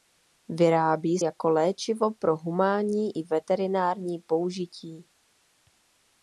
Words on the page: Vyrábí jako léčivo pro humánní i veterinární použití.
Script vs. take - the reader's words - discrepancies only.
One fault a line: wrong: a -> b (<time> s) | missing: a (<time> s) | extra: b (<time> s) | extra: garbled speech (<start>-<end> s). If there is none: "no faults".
no faults